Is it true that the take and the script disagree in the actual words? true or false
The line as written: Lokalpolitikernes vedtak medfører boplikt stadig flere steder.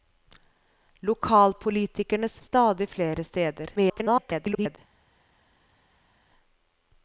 true